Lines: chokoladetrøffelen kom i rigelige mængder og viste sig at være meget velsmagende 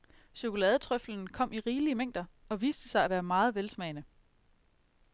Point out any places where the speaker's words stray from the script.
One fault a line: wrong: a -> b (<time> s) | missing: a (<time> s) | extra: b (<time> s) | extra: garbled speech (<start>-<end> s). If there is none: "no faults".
no faults